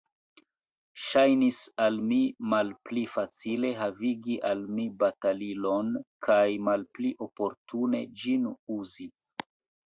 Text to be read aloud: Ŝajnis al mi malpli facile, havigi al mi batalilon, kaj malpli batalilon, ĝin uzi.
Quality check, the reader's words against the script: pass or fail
fail